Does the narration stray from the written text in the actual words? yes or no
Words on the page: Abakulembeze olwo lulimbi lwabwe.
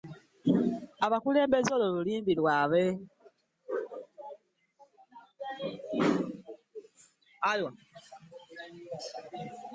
no